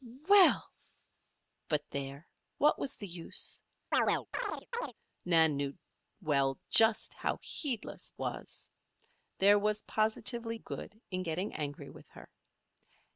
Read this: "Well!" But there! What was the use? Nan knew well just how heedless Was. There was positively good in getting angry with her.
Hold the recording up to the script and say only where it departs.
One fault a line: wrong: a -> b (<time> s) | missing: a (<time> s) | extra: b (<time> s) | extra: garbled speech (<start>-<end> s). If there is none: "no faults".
no faults